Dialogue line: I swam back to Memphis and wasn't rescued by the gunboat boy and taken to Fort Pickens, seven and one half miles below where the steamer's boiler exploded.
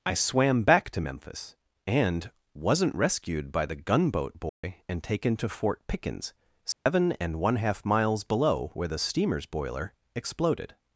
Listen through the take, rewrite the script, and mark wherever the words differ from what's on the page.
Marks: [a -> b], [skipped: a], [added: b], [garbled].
I swam back to Memphis and wasn't rescued by the gunboat boy and taken to Fort Pickens, seven and one half miles below where the steamer's boiler exploded.